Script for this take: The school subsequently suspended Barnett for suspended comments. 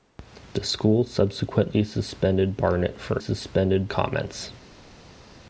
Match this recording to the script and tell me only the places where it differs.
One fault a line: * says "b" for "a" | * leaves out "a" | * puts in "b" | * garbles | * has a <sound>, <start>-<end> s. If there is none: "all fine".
all fine